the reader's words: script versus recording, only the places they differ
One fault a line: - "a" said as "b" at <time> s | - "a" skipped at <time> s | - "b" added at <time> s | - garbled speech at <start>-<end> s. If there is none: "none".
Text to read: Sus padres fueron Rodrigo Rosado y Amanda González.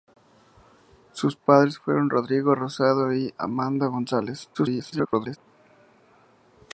- garbled speech at 4.5-5.4 s